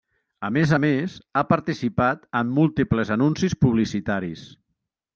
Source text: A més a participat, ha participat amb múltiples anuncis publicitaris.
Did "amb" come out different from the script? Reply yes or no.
yes